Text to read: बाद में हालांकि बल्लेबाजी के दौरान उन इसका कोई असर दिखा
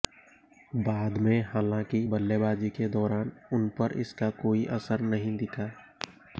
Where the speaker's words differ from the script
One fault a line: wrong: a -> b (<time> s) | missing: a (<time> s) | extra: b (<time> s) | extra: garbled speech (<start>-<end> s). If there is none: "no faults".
extra: पर (3.8 s)
extra: नहीं (5.1 s)